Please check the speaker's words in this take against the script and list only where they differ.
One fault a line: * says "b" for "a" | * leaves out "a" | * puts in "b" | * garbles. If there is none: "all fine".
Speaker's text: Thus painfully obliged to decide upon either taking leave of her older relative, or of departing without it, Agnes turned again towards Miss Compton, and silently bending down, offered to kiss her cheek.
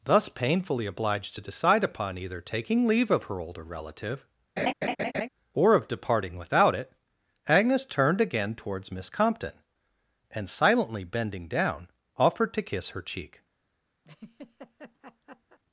all fine